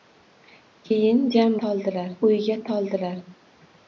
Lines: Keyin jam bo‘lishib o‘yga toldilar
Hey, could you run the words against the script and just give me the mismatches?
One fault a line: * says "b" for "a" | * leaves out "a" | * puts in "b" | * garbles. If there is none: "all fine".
* says "toldilar" for "bo‘lishib"